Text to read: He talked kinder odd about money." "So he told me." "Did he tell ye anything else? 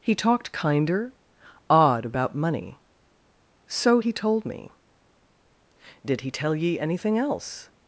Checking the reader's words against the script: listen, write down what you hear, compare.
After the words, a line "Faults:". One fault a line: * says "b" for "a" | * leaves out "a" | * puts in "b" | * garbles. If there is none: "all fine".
He talked kinder odd about money." "So he told me." "Did he tell ye anything else?
Faults:
all fine